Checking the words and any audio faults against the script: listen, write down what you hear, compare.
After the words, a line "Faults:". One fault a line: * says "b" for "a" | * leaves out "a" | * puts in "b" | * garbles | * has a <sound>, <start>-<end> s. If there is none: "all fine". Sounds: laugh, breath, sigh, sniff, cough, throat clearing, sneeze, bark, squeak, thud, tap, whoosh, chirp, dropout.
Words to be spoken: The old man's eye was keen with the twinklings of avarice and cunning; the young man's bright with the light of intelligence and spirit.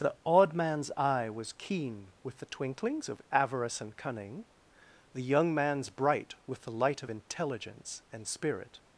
The odd man's eye was keen with the twinklings of avarice and cunning; the young man's bright with the light of intelligence and spirit.
Faults:
* says "odd" for "old"